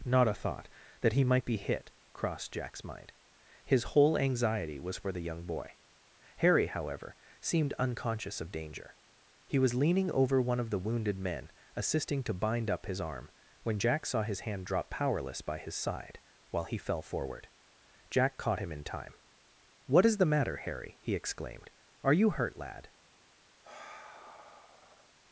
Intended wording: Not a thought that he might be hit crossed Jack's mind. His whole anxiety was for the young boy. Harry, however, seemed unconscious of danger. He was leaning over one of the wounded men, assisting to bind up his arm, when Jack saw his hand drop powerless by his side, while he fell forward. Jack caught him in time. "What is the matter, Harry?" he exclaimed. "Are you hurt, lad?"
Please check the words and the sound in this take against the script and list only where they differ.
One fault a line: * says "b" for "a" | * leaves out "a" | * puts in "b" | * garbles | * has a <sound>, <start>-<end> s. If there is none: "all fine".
* has a sigh, 23.6-25.1 s